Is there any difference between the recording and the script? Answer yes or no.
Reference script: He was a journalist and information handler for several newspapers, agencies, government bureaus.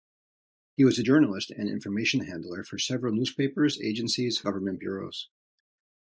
no